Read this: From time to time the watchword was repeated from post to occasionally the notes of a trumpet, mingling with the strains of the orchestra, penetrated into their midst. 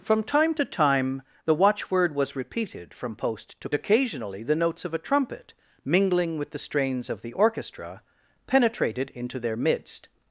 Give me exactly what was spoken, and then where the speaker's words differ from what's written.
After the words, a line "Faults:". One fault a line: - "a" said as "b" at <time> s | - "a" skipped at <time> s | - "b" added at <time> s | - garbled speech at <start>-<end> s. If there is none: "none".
From time to time the watchword was repeated from post to occasionally the notes of a trumpet, mingling with the strains of the orchestra, penetrated into their midst.
Faults:
none